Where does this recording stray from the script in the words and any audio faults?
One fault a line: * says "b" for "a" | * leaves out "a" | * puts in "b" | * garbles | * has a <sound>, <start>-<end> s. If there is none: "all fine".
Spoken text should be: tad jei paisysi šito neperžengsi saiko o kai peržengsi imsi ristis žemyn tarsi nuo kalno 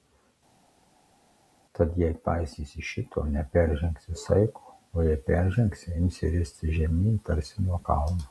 * says "jei" for "kai"